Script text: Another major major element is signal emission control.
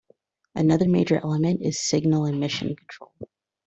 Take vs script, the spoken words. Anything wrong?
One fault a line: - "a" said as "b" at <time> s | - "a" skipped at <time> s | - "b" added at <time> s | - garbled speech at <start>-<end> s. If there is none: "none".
- "major" skipped at 1.2 s